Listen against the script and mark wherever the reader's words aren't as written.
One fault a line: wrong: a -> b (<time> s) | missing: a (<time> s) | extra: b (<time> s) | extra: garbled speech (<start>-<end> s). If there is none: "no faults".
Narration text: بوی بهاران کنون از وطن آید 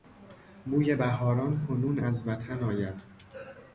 no faults